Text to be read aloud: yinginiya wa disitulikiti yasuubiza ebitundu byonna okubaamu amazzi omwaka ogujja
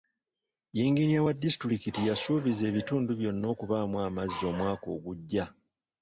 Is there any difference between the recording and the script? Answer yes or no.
no